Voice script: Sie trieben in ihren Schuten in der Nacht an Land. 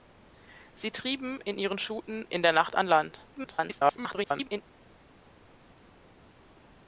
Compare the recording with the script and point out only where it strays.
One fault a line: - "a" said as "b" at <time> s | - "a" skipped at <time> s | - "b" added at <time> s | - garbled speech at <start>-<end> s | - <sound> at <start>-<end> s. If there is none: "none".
- garbled speech at 3.3-4.6 s